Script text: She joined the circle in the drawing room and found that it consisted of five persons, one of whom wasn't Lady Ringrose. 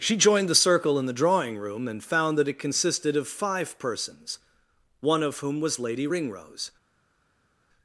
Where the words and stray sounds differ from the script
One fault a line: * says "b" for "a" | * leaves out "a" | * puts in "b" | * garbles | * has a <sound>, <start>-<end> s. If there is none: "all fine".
* says "was" for "wasn't"